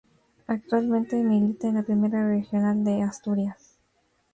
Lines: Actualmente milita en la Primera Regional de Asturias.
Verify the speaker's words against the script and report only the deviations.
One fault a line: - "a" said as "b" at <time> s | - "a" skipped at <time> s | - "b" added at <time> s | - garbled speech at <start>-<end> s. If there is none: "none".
none